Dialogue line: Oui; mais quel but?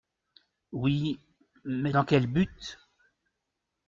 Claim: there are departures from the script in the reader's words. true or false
true